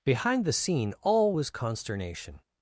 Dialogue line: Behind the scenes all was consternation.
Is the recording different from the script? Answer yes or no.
yes